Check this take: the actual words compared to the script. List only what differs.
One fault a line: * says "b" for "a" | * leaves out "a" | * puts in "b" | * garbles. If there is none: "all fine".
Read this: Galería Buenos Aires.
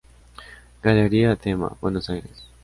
* puts in "Tema"